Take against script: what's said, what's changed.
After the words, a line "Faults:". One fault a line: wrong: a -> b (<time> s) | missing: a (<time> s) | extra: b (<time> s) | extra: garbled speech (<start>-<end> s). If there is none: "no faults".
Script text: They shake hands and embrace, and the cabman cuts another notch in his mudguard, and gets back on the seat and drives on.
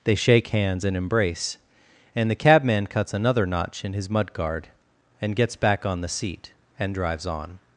They shake hands and embrace, and the cabman cuts another notch in his mudguard, and gets back on the seat and drives on.
Faults:
no faults